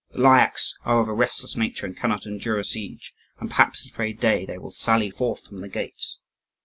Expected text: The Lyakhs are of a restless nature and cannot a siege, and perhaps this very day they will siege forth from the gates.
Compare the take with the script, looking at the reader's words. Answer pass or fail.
fail